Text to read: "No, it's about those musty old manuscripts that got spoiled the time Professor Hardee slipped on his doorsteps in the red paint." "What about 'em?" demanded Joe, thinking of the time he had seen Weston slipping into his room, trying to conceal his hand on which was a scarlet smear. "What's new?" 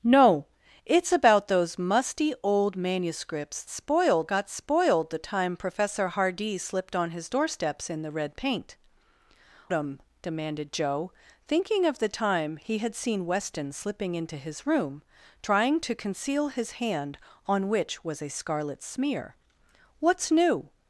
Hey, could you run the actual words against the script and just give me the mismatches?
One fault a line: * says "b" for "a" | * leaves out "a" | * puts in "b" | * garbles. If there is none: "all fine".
* says "spoiled" for "that"
* leaves out "What about"